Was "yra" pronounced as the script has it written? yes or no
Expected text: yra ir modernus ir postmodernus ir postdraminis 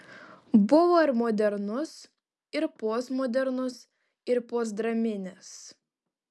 no